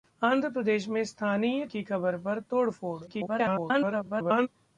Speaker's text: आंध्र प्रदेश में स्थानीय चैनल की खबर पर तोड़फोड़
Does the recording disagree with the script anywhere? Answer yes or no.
yes